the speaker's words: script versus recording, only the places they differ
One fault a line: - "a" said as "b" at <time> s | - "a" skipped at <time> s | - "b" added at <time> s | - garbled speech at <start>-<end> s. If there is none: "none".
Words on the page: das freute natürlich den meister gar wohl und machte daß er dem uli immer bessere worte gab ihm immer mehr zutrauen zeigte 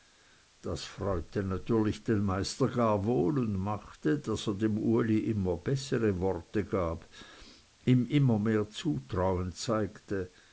none